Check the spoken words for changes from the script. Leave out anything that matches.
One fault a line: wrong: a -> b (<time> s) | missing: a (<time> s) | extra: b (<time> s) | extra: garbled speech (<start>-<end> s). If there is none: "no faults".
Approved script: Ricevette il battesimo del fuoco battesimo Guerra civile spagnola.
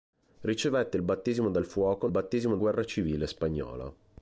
no faults